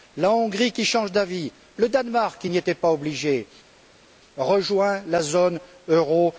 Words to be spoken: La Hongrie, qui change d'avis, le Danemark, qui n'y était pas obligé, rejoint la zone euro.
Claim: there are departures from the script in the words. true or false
false